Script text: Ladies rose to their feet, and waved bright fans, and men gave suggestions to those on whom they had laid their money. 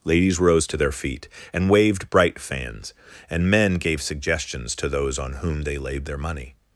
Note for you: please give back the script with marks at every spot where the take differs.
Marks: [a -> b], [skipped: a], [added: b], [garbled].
Ladies rose to their feet, and waved bright fans, and men gave suggestions to those on whom they [skipped: had] laid their money.